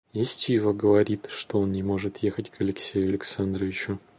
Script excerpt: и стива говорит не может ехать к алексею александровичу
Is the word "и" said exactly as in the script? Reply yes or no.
yes